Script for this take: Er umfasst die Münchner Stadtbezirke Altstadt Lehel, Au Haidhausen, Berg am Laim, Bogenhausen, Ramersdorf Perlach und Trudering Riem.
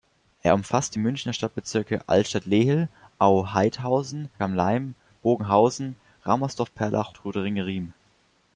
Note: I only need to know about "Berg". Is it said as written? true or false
false